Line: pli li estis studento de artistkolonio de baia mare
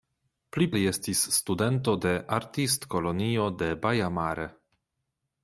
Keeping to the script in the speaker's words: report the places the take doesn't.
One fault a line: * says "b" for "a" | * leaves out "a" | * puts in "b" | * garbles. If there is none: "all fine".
all fine